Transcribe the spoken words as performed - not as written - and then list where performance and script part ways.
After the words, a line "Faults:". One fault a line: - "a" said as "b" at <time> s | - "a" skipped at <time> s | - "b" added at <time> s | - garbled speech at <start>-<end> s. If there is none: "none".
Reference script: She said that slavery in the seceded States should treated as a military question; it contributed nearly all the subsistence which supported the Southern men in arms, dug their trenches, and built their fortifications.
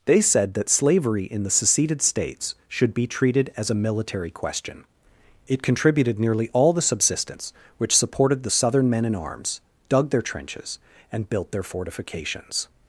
They said that slavery in the seceded States should be treated as a military question; it contributed nearly all the subsistence which supported the Southern men in arms, dug their trenches, and built their fortifications.
Faults:
- "She" said as "They" at 0.1 s
- "be" added at 2.9 s